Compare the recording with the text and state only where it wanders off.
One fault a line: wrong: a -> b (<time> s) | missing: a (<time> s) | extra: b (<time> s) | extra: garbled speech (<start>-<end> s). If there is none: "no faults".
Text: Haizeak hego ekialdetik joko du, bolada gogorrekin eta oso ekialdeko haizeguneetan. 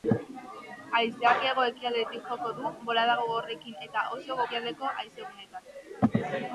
no faults